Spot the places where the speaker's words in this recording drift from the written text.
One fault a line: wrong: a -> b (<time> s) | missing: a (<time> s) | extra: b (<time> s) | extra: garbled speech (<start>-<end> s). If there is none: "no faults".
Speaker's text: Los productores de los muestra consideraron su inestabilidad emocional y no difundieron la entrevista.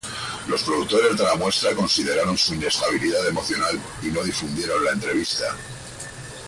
wrong: los -> la (1.2 s)